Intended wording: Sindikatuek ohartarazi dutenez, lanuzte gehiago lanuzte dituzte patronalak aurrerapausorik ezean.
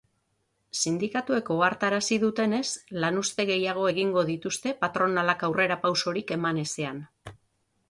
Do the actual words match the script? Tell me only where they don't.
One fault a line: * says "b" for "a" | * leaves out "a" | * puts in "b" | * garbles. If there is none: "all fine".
* says "egingo" for "lanuzte"
* puts in "eman"